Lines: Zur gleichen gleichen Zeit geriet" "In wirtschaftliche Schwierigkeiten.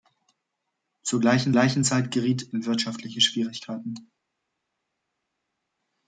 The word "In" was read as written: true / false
true